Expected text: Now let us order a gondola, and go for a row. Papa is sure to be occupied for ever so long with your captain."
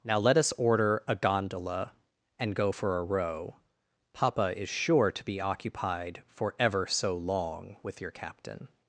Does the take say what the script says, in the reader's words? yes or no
yes